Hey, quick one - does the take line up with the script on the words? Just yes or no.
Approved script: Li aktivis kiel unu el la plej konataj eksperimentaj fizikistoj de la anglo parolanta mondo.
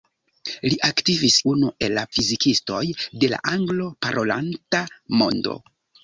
no